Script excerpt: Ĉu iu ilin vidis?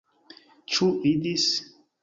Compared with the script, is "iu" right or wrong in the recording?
wrong